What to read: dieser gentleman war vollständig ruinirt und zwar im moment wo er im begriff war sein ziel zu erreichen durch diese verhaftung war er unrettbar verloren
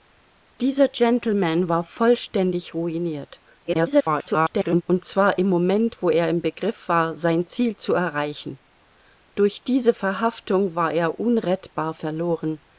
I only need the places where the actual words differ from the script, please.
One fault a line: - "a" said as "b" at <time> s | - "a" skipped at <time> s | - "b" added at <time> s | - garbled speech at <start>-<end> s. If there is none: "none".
- garbled speech at 3.6-4.8 s